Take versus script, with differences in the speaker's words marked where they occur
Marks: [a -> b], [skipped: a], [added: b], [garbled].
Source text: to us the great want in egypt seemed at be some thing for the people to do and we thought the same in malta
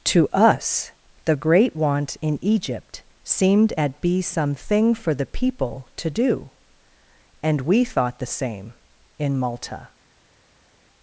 to us the great want in egypt seemed at be some thing for the people to do and we thought the same in malta